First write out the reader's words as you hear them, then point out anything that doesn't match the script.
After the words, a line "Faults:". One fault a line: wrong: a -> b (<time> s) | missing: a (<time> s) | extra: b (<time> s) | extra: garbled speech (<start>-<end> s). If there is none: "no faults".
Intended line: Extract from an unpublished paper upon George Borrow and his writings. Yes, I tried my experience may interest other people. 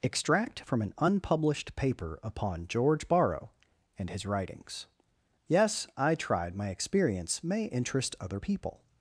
Extract from an unpublished paper upon George Borrow and his writings. Yes, I tried my experience may interest other people.
Faults:
no faults